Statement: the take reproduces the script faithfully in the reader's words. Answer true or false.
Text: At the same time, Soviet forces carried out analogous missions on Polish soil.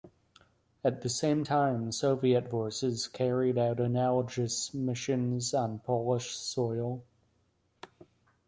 true